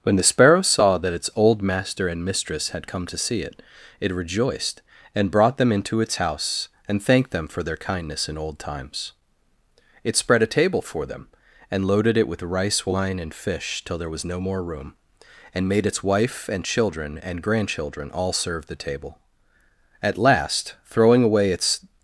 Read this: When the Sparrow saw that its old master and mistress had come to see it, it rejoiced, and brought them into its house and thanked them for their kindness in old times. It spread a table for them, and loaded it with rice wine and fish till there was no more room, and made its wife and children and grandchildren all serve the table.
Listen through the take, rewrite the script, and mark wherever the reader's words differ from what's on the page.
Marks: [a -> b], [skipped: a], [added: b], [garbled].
When the Sparrow saw that its old master and mistress had come to see it, it rejoiced, and brought them into its house and thanked them for their kindness in old times. It spread a table for them, and loaded it with rice wine and fish till there was no more room, and made its wife and children and grandchildren all serve the table. [added: At last throwing away its]